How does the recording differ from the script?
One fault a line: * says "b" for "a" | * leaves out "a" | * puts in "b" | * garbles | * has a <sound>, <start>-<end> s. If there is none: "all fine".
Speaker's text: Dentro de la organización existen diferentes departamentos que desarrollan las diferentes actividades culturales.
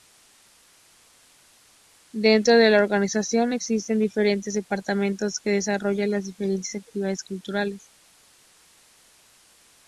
all fine